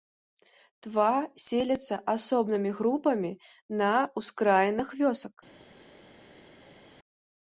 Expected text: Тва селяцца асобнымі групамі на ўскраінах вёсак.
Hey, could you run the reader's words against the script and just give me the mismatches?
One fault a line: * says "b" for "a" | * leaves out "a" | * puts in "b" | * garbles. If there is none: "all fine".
all fine